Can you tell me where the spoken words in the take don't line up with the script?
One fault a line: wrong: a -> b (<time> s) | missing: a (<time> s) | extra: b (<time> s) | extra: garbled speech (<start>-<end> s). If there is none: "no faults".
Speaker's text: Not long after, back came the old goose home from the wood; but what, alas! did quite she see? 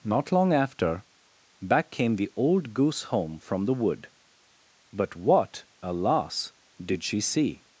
missing: quite (7.0 s)